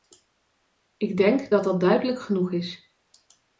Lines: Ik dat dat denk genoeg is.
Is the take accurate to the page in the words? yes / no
no